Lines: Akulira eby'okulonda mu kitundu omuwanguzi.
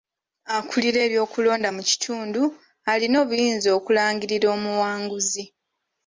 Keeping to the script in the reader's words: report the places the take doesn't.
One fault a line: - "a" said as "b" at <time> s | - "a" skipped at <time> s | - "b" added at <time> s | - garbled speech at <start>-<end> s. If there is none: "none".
- "alina obuyinza okulangirira" added at 2.9 s